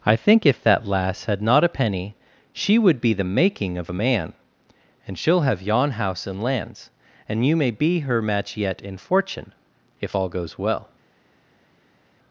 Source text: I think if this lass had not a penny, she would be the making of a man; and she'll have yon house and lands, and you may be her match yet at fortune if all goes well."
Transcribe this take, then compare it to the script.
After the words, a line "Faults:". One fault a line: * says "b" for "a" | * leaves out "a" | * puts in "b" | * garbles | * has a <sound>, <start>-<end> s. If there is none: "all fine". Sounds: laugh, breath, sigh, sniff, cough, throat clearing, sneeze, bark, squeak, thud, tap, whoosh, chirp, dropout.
I think if that lass had not a penny, she would be the making of a man; and she'll have yon house and lands, and you may be her match yet in fortune if all goes well."
Faults:
* says "that" for "this"
* says "in" for "at"